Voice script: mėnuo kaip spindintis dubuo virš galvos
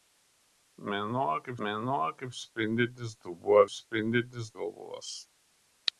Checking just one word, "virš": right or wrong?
wrong